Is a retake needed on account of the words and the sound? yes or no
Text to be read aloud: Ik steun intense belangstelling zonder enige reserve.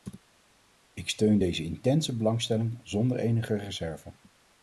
yes